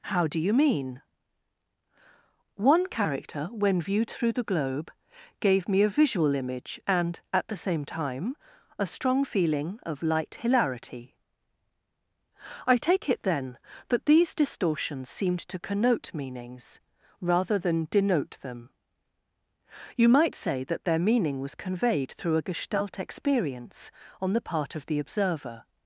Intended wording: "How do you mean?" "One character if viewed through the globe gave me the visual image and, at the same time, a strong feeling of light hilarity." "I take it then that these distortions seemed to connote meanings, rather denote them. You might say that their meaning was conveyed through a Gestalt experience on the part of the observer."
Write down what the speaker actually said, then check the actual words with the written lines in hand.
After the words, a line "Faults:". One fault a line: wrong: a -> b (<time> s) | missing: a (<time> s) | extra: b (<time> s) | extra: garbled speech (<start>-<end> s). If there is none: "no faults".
"How do you mean?" "One character when viewed through the globe gave me a visual image and, at the same time, a strong feeling of light hilarity." "I take it then that these distortions seemed to connote meanings, rather than denote them. You might say that their meaning was conveyed through a Gestalt experience on the part of the observer."
Faults:
wrong: if -> when (3.5 s)
wrong: the -> a (5.8 s)
extra: than (17.6 s)